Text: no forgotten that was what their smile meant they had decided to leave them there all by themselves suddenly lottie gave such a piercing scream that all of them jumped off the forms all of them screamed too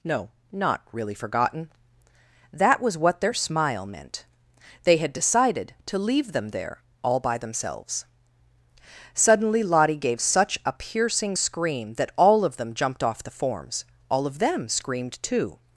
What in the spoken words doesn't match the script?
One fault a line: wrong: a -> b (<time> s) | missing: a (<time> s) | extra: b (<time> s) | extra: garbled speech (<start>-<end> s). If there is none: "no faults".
extra: not really (0.5 s)